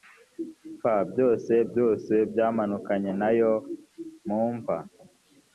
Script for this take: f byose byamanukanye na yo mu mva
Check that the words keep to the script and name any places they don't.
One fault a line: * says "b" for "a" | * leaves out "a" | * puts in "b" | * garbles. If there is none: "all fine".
* puts in "byose"